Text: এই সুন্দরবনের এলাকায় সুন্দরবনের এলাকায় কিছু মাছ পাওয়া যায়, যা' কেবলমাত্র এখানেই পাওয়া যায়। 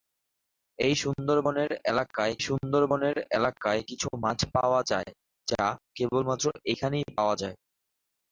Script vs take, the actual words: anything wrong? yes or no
no